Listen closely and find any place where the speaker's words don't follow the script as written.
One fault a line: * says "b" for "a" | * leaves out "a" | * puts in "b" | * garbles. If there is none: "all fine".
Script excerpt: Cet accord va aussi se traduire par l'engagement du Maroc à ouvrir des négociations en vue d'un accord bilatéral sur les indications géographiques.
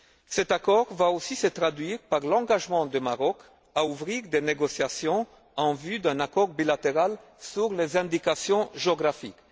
all fine